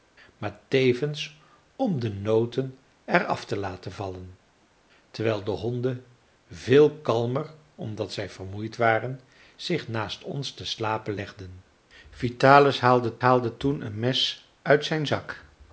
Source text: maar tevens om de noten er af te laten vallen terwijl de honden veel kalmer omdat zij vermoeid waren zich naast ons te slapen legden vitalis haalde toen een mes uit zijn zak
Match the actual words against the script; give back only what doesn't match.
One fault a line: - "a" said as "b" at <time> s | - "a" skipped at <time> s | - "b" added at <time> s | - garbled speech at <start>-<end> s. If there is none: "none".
- "haalde" added at 13.2 s